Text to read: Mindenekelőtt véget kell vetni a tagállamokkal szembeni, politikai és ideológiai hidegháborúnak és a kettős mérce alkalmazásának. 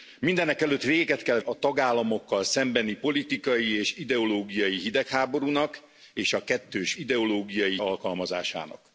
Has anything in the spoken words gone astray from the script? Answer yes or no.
yes